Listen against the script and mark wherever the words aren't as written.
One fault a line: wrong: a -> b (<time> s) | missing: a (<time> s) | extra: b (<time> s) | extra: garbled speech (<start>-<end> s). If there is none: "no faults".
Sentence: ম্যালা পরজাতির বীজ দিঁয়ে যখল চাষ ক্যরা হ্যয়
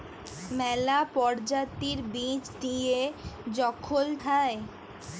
missing: চাষ ক্যরা (4.1 s)